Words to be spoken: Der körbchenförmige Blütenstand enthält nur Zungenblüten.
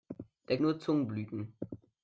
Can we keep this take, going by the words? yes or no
no